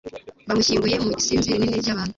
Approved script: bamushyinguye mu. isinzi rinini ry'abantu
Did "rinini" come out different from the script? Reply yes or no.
no